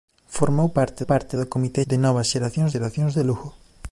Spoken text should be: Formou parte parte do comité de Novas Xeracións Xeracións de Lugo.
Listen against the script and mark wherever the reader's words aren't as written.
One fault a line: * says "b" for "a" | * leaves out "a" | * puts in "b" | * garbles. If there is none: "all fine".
all fine